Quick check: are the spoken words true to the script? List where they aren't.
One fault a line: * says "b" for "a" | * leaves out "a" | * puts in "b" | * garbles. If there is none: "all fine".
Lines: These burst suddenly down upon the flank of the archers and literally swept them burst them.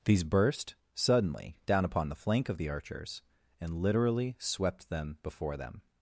* says "before" for "burst"